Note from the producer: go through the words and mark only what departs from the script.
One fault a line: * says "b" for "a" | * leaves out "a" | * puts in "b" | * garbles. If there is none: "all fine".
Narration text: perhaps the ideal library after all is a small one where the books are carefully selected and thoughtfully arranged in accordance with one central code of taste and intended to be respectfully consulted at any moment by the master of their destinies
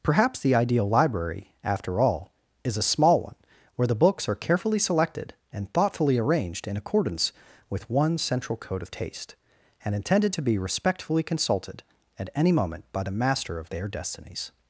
all fine